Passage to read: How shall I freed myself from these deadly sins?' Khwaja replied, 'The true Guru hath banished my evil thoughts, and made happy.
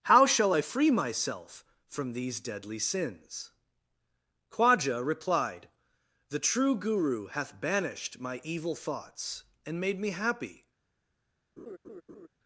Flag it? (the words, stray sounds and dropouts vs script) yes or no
yes